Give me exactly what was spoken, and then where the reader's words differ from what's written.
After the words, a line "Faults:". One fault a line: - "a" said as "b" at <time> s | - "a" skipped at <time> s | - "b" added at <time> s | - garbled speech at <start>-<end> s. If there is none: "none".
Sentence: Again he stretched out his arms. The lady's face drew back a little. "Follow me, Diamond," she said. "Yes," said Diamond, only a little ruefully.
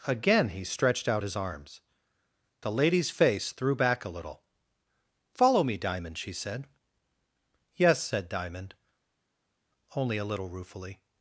Again he stretched out his arms. The lady's face threw back a little. "Follow me, Diamond," she said. "Yes," said Diamond, only a little ruefully.
Faults:
- "drew" said as "threw" at 3.5 s